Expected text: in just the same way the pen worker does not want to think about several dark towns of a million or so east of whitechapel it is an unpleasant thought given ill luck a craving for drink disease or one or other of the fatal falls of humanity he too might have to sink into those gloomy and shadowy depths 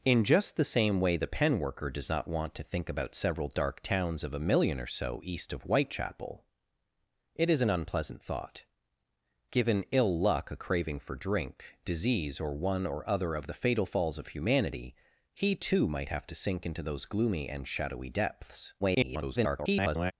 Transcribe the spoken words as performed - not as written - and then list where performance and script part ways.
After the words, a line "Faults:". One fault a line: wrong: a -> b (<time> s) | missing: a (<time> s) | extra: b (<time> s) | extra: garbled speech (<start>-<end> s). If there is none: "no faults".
in just the same way the pen worker does not want to think about several dark towns of a million or so east of whitechapel it is an unpleasant thought given ill luck a craving for drink disease or one or other of the fatal falls of humanity he too might have to sink into those gloomy and shadowy depths [garbled]
Faults:
extra: garbled speech (18.8-20.1 s)